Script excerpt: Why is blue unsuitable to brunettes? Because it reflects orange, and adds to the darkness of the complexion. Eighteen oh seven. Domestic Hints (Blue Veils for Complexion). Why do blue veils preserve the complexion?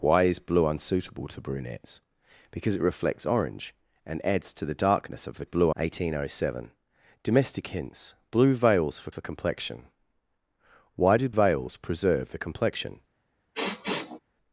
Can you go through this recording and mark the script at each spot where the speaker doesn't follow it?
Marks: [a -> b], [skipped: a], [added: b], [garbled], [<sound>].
Why is blue unsuitable to brunettes? Because it reflects orange, and adds to the darkness of the [complexion. -> blue] Eighteen oh seven. Domestic Hints (Blue Veils for [added: for] Complexion). Why do [skipped: blue] veils preserve the complexion? [sniff]